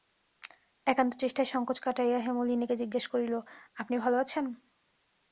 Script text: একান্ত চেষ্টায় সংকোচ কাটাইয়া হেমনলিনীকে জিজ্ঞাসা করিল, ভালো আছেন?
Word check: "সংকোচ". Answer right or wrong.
right